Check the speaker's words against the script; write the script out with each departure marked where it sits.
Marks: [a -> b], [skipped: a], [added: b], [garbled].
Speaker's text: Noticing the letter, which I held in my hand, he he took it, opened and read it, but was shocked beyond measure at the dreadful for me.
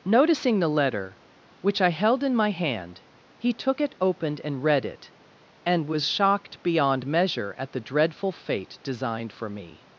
Noticing the letter, which I held in my hand, he [skipped: he] took it, opened and read it, [but -> and] was shocked beyond measure at the dreadful [added: fate designed] for me.